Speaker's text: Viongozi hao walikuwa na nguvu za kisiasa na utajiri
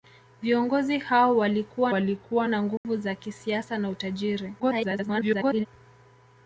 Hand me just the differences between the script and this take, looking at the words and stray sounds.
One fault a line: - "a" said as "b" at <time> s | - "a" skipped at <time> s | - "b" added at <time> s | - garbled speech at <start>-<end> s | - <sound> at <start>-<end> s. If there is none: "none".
- "walikuwa" added at 1.9 s
- dropout at 2.8-2.8 s
- garbled speech at 4.6-5.7 s